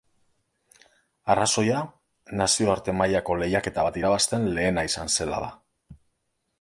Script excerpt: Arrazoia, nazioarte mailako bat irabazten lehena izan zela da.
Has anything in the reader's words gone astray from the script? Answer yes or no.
yes